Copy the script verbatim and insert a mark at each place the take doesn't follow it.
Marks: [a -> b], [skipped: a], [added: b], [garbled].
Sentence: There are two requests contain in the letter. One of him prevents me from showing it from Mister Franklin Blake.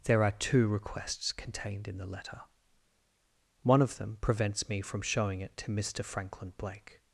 There are two requests [contain -> contained] in the letter. One of [him -> them] prevents me from showing it [from -> to] Mister Franklin Blake.